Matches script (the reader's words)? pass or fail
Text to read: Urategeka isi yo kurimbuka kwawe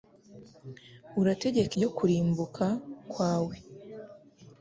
fail